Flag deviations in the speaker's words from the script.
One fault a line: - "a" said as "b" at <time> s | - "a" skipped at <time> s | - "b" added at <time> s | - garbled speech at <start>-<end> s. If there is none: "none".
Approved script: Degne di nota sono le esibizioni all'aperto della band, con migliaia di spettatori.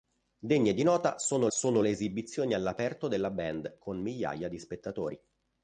- "sono" added at 1.5 s